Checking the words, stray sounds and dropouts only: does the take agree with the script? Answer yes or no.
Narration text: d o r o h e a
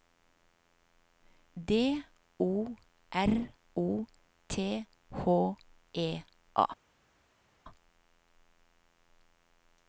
no